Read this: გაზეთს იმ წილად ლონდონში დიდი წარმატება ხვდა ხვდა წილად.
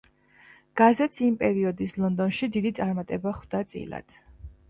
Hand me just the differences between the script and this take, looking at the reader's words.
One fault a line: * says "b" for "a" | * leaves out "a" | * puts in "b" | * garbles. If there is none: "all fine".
* says "პერიოდის" for "წილად"
* leaves out "ხვდა"